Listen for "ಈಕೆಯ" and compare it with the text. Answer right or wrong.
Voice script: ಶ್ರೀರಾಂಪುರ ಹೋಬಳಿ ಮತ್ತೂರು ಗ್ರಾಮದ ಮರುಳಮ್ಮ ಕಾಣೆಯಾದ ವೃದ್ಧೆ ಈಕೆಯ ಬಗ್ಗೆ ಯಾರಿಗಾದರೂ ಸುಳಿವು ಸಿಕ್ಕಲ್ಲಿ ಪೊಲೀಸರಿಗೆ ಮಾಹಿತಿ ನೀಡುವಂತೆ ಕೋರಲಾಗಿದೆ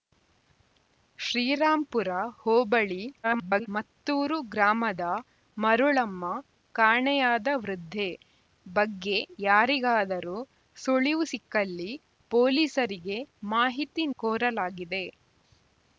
wrong